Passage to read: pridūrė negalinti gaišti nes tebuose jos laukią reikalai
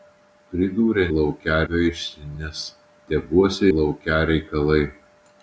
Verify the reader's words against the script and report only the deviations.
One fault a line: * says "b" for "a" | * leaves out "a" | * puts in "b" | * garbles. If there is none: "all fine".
* says "laukią" for "negalinti"
* leaves out "jos"